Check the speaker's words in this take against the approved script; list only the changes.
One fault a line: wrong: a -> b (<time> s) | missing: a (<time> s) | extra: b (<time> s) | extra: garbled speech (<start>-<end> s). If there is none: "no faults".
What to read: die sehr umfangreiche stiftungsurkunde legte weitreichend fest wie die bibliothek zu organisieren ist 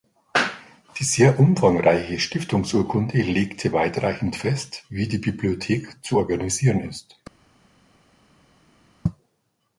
no faults